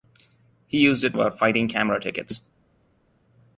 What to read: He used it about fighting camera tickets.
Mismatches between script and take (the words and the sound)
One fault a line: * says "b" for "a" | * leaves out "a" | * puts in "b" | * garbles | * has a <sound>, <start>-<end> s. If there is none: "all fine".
all fine